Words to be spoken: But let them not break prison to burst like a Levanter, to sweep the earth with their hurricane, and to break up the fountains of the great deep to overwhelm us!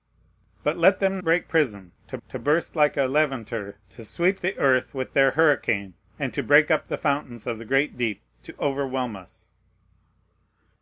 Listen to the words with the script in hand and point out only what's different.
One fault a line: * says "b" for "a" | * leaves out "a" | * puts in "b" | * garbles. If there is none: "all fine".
* leaves out "not"
* puts in "to"